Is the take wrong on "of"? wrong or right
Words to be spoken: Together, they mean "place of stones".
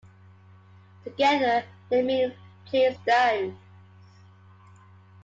wrong